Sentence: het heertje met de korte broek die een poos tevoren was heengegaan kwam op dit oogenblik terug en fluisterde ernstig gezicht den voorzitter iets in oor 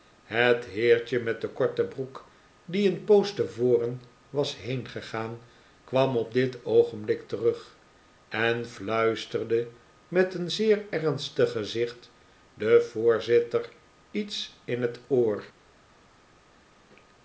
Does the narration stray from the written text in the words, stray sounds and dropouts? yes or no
yes